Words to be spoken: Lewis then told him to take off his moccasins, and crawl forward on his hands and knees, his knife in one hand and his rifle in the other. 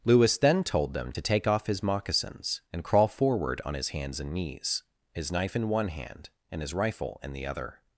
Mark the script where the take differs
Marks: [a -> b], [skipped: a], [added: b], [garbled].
Lewis then told [him -> them] to take off his moccasins, and crawl forward on his hands and knees, his knife in one hand and his rifle in the other.